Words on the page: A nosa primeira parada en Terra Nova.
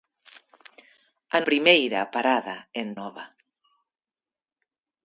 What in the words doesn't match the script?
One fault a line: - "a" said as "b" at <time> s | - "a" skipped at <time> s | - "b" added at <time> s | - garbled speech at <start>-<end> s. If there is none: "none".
- "nosa" skipped at 1.4 s
- "Terra" skipped at 2.9 s